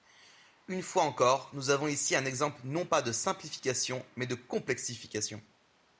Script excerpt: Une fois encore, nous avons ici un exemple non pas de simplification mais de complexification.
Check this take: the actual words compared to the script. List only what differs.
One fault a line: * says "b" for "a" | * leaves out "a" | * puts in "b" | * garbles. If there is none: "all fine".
all fine